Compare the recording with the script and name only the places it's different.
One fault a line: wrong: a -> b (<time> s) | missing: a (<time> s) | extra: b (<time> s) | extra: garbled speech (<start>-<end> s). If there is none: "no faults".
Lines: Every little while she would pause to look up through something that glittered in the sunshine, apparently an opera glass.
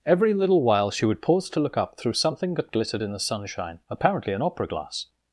no faults